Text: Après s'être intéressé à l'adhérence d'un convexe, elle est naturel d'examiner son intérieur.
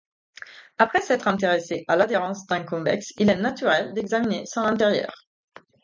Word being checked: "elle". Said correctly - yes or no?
no